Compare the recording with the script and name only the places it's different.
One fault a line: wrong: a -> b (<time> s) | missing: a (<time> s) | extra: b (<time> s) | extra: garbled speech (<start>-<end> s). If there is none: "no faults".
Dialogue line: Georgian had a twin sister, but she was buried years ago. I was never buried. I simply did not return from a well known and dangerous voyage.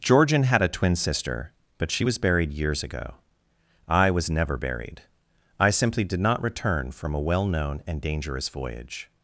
no faults